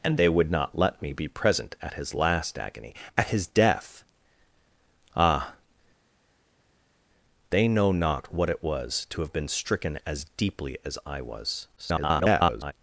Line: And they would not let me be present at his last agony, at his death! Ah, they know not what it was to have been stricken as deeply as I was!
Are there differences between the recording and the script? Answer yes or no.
yes